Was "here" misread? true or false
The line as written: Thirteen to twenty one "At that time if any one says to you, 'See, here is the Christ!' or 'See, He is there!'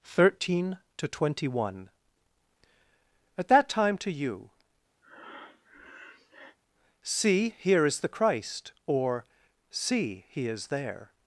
false